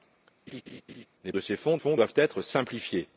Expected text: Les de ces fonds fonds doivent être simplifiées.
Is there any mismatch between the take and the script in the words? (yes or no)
no